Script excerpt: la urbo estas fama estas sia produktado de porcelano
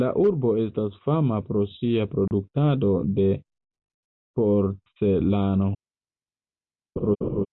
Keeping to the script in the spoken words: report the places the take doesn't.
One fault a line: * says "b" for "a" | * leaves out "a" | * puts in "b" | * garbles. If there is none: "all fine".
* says "pro" for "estas"